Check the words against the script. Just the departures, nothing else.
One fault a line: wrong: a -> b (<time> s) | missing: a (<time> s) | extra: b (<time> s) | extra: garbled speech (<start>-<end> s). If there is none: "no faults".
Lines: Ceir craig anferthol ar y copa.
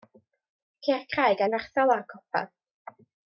no faults